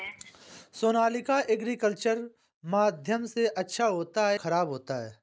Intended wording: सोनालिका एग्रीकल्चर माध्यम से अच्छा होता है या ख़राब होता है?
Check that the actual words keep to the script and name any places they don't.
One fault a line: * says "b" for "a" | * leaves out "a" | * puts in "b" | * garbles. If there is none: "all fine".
* leaves out "या"